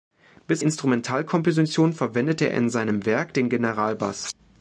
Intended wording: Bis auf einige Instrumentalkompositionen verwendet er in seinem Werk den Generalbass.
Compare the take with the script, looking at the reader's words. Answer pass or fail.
fail